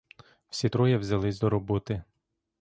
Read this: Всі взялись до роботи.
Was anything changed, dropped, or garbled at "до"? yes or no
no